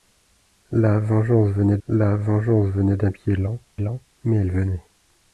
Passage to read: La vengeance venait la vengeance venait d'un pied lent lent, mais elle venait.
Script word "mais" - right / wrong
right